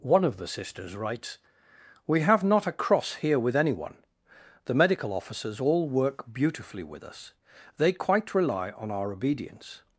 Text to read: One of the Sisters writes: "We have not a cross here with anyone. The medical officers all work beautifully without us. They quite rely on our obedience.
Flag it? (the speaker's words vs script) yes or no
yes